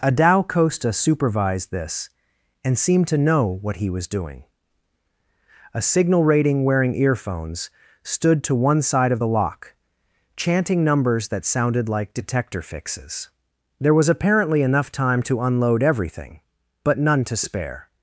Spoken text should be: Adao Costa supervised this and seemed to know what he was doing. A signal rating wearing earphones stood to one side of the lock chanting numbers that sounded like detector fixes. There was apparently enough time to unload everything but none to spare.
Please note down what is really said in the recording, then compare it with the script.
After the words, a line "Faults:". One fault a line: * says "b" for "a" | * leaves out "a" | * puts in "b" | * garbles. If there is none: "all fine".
Adao Costa supervised this and seemed to know what he was doing. A signal rating wearing earphones stood to one side of the lock chanting numbers that sounded like detector fixes. There was apparently enough time to unload everything but none to spare.
Faults:
all fine